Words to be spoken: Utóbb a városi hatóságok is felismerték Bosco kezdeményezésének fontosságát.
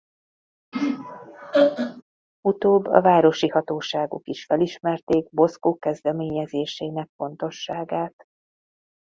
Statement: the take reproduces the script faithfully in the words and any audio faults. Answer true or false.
false